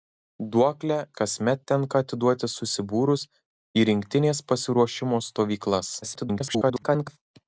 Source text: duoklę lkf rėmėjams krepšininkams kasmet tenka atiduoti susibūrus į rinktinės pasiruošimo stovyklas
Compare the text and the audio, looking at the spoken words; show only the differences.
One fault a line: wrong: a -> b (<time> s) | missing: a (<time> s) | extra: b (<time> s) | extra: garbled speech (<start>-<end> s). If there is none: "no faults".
missing: lkf rėmėjams krepšininkams (0.9 s)
extra: garbled speech (6.0-7.2 s)